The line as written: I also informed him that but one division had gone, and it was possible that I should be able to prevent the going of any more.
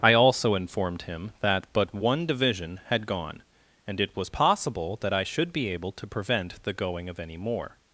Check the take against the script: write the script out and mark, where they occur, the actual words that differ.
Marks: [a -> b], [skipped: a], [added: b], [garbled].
I also informed him that but one division had gone, and it was possible that I should be able to prevent the going of any more.